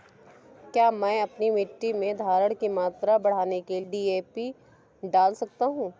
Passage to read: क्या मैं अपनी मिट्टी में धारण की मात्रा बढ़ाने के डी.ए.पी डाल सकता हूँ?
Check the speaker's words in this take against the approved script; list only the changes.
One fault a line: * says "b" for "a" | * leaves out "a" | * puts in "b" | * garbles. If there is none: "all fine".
all fine